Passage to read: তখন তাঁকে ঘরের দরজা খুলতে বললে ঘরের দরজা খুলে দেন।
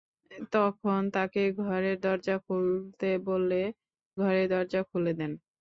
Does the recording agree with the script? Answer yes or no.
yes